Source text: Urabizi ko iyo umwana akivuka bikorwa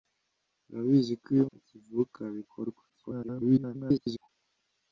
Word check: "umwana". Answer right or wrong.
wrong